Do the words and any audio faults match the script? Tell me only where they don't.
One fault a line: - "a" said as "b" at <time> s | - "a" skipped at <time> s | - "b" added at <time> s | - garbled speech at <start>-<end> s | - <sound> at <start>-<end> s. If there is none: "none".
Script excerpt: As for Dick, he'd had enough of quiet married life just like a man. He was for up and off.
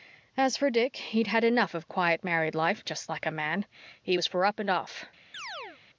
- chirp at 5.3-5.8 s